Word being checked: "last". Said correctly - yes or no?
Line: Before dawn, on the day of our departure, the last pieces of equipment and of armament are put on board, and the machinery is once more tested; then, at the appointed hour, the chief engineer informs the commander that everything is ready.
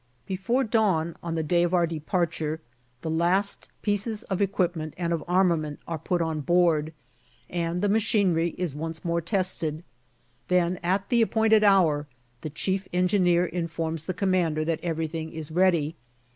yes